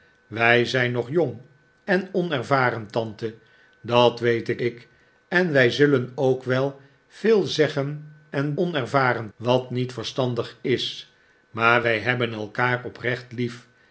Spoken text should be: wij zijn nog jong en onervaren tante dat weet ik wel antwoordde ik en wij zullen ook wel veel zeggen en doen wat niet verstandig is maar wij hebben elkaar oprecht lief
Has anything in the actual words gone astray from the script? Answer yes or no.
yes